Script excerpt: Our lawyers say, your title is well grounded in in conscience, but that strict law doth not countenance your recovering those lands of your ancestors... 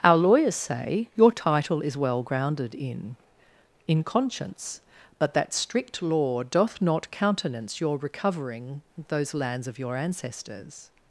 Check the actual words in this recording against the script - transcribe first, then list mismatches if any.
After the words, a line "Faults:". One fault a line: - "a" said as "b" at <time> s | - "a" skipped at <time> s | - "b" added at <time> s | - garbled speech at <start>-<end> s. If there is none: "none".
Our lawyers say, your title is well grounded in in conscience, but that strict law doth not countenance your recovering those lands of your ancestors...
Faults:
none